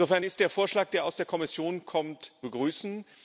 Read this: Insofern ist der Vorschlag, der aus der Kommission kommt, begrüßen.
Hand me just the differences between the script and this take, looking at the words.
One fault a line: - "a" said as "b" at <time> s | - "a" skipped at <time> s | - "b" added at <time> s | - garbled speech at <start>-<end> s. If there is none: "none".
none